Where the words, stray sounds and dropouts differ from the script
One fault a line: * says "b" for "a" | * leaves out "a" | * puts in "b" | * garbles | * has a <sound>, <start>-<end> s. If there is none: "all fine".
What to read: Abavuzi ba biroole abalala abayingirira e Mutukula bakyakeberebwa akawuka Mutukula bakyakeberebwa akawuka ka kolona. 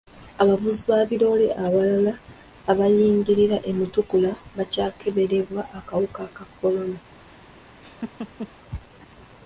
* leaves out "Mutukula bakyakeberebwa akawuka"
* has a laugh, 7.8-8.5 s